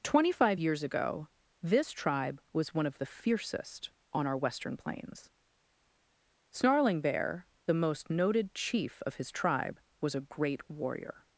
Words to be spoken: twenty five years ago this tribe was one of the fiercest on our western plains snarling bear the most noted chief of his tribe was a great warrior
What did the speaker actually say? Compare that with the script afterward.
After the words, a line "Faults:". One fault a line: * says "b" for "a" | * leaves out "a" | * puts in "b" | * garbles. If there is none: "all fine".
twenty five years ago this tribe was one of the fiercest on our western plains snarling bear the most noted chief of his tribe was a great warrior
Faults:
all fine